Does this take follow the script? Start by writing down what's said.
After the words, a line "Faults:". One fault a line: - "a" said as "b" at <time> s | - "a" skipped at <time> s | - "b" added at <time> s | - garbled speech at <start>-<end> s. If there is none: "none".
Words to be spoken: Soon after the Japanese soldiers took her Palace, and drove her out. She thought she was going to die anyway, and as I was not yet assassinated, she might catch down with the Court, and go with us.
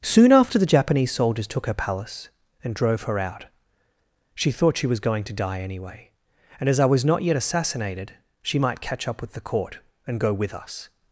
Soon after the Japanese soldiers took her Palace, and drove her out. She thought she was going to die anyway, and as I was not yet assassinated, she might catch up with the Court, and go with us.
Faults:
- "down" said as "up" at 9.1 s